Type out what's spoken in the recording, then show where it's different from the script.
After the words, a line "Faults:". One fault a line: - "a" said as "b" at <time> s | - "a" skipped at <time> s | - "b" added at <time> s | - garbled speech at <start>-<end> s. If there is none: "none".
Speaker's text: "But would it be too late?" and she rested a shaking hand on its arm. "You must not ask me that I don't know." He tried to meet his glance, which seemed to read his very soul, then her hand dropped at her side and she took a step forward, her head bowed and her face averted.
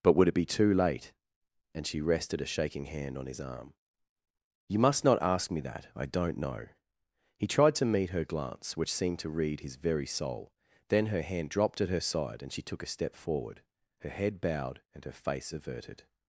"But would it be too late?" and she rested a shaking hand on his arm. "You must not ask me that I don't know." He tried to meet her glance, which seemed to read his very soul, then her hand dropped at her side and she took a step forward, her head bowed and her face averted.
Faults:
- "its" said as "his" at 3.3 s
- "his" said as "her" at 8.1 s